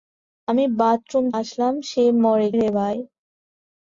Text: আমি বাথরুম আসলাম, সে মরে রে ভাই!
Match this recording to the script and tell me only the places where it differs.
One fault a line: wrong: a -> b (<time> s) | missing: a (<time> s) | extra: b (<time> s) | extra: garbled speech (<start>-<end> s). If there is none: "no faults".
no faults